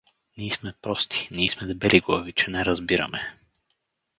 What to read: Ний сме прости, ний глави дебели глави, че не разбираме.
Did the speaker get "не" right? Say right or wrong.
right